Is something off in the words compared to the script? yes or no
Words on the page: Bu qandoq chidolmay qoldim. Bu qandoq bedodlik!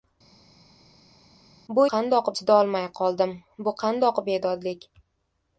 no